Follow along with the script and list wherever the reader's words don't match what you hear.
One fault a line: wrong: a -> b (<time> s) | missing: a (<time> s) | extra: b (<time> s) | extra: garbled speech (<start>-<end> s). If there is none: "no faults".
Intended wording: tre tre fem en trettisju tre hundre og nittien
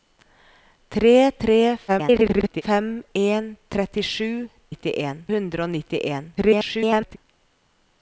extra: garbled speech (1.9-2.6 s)
wrong: tre -> nittien (4.7 s)
extra: garbled speech (6.4-7.2 s)